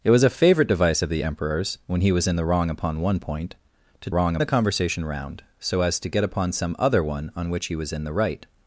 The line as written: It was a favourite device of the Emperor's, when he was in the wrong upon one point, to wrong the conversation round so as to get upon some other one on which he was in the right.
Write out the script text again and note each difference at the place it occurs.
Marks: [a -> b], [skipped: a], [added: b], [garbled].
It was a favourite device of the Emperor's, when he was in the wrong upon one point, to wrong the conversation round so as to get upon some other one on which he was in the right.